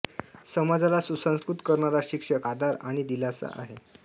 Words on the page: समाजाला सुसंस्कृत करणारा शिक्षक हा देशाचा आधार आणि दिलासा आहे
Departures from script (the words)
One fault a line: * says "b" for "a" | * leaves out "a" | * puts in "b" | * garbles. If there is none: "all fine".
* leaves out "हा देशाचा"